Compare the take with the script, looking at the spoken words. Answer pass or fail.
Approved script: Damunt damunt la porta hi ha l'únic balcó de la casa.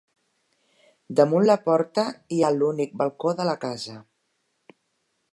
fail